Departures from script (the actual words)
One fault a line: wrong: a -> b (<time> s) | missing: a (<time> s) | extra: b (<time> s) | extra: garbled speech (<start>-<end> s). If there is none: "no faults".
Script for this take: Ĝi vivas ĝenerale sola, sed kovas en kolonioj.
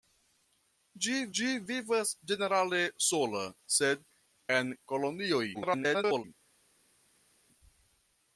extra: ĝi (1.4 s)
missing: kovas (4.0 s)
extra: garbled speech (5.5-6.2 s)